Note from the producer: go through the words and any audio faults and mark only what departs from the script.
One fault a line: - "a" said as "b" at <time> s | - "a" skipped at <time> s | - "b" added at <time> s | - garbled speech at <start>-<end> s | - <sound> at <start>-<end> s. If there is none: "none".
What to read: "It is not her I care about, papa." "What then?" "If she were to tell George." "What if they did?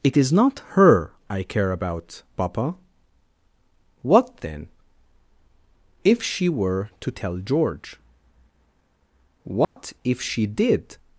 - dropout at 9.6-9.8 s
- "they" said as "she" at 10.2 s